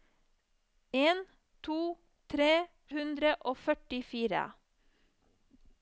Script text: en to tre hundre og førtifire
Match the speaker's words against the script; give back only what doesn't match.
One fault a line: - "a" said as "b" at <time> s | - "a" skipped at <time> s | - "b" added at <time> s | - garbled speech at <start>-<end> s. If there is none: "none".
none